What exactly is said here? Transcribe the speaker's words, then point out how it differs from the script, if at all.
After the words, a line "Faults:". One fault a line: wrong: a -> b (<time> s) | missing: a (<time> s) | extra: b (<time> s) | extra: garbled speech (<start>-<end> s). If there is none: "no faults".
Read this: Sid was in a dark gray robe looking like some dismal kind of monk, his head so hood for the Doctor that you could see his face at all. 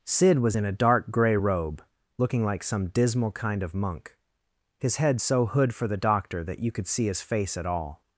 Sid was in a dark gray robe looking like some dismal kind of monk, his head so hood for the Doctor that you could see his face at all.
Faults:
no faults